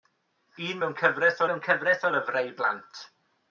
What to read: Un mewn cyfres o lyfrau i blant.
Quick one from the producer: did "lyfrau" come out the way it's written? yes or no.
yes